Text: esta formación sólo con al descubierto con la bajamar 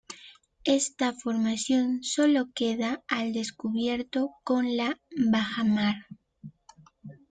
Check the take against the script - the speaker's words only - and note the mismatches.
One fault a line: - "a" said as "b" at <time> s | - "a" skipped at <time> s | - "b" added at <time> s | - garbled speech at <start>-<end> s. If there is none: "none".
- "con" said as "queda" at 2.5 s